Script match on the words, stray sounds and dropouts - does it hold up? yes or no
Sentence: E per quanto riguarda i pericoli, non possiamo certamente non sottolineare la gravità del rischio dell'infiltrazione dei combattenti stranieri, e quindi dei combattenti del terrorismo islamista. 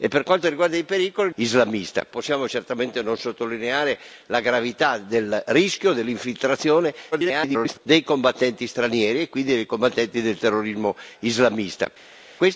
no